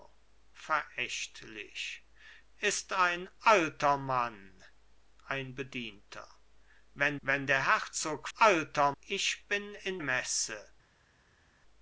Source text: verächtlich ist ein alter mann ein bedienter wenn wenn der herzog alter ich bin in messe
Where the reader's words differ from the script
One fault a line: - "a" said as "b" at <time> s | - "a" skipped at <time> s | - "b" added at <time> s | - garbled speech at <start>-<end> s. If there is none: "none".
none